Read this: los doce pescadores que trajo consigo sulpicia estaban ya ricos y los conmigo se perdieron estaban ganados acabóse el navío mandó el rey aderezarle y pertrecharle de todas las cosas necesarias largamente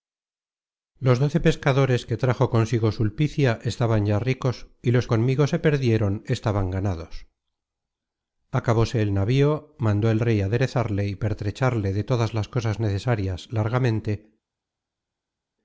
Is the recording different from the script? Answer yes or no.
no